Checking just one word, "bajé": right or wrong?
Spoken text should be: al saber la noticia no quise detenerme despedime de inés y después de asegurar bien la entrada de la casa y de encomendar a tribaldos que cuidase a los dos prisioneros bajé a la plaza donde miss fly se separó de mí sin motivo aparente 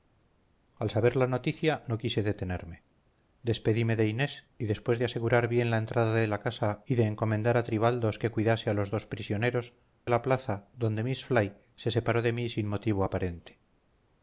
wrong